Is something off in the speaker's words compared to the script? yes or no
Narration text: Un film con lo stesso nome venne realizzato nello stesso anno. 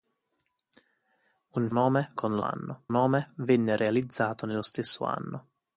yes